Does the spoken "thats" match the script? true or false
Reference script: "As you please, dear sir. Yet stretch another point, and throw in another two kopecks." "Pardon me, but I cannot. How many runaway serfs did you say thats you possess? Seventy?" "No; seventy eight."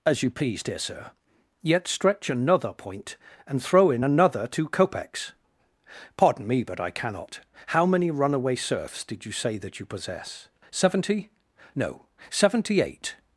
false